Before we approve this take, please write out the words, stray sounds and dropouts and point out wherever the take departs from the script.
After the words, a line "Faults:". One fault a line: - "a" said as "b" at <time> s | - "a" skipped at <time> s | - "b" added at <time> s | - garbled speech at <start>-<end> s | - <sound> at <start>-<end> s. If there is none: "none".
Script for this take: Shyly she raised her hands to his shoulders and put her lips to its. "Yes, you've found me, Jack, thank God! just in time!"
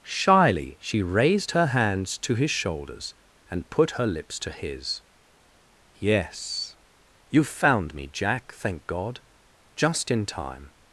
Shyly she raised her hands to his shoulders and put her lips to his. "Yes, you've found me, Jack, thank God! just in time!"
Faults:
- "its" said as "his" at 4.5 s